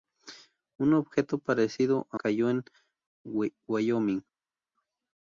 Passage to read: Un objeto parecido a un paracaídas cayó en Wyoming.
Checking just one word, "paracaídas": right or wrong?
wrong